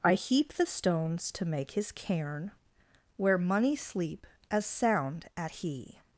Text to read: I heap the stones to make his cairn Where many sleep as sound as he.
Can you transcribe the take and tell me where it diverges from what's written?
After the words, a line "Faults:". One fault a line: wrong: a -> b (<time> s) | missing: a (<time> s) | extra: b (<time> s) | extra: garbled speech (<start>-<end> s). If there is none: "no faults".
I heap the stones to make his cairn Where money sleep as sound at he.
Faults:
wrong: many -> money (3.4 s)
wrong: as -> at (5.4 s)